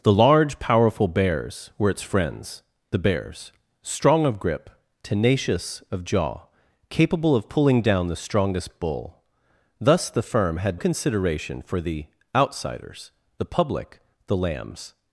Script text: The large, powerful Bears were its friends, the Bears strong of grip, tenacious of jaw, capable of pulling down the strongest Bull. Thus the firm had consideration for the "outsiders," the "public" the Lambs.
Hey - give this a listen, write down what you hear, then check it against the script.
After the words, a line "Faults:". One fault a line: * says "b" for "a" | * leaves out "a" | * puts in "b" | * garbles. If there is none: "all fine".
The large, powerful Bears were its friends, the Bears strong of grip, tenacious of jaw, capable of pulling down the strongest Bull. Thus the firm had consideration for the "outsiders," the "public" the Lambs.
Faults:
all fine